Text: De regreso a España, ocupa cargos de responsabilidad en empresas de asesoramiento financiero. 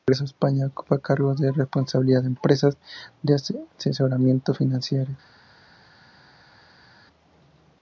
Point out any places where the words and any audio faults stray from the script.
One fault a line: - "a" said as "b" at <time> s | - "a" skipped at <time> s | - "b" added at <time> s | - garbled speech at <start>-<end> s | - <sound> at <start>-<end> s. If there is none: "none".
none